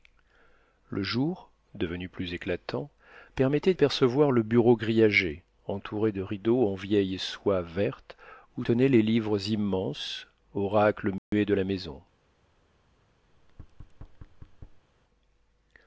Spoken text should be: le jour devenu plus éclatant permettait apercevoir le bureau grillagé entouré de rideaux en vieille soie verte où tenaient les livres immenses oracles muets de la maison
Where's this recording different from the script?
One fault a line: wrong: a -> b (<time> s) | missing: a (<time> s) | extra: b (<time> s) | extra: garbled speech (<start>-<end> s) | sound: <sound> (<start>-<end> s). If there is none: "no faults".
sound: dropout (11.2-11.3 s)
sound: thud (13.3-14.9 s)